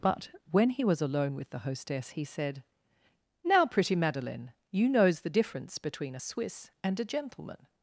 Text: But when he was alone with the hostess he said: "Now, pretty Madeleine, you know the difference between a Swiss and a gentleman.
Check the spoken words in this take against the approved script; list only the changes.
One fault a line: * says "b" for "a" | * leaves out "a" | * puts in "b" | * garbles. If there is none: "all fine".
* says "knows" for "know"